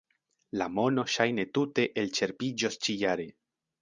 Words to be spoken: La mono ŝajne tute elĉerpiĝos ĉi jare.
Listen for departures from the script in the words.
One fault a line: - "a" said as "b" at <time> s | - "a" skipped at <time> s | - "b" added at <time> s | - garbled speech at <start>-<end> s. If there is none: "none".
none